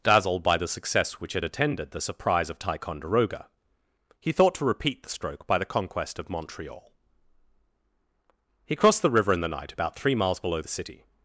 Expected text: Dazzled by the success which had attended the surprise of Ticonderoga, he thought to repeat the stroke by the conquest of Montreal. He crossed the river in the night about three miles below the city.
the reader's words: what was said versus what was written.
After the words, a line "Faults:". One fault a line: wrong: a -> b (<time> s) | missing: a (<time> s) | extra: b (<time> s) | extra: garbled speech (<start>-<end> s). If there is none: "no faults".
Dazzled by the success which had attended the surprise of Ticonderoga, he thought to repeat the stroke by the conquest of Montreal. He crossed the river in the night about three miles below the city.
Faults:
no faults